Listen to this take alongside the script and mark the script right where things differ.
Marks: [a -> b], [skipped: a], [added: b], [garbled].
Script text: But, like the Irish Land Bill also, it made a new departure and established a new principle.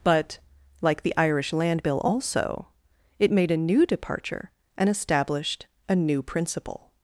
But, like the Irish Land Bill also, it made a new departure and established a new principle.